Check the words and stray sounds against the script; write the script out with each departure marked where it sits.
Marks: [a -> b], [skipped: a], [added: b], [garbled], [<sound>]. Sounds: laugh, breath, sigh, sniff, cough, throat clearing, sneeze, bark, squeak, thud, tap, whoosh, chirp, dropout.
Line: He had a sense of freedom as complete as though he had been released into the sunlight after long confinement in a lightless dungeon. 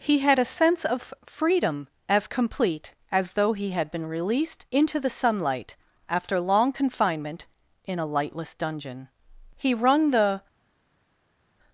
He had a sense of freedom as complete as though he had been released into the sunlight after long confinement in a lightless dungeon. [added: He wrung the]